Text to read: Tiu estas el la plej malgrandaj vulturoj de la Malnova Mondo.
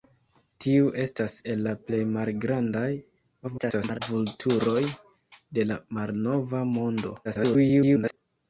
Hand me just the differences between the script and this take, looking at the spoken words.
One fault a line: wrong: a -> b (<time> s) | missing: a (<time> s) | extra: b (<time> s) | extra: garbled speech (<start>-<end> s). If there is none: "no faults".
extra: garbled speech (3.4-4.0 s)
extra: garbled speech (7.2-8.2 s)